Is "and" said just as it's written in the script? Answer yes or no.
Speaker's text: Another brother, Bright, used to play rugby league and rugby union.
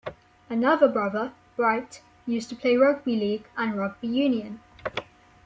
yes